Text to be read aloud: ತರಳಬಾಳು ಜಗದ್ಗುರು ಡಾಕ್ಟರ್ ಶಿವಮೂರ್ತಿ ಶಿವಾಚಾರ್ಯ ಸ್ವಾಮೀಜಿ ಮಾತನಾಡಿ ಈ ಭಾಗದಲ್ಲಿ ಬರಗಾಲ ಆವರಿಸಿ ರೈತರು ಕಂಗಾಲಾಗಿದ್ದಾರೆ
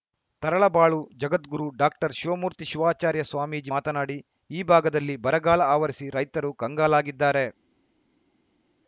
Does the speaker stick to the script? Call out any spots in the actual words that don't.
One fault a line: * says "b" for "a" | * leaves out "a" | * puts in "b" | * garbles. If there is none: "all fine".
all fine